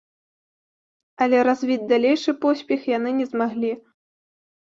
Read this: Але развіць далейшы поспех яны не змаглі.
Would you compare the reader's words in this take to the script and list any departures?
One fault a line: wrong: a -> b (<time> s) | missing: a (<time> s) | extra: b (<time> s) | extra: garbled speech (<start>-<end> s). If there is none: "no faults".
no faults